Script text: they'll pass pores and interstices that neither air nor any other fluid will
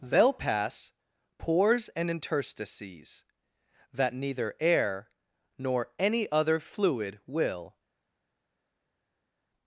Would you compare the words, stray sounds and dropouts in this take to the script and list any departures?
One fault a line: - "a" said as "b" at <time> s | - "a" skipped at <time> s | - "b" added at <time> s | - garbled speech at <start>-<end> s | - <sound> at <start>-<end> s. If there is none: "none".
none